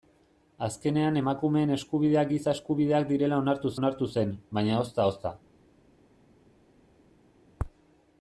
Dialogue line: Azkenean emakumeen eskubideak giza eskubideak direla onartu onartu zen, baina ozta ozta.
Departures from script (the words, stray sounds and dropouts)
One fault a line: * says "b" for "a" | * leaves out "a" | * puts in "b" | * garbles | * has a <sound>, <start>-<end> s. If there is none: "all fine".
all fine